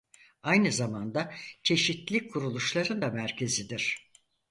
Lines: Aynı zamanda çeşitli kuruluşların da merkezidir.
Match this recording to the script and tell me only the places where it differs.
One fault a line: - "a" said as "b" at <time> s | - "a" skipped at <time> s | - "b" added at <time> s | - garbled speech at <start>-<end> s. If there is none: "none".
none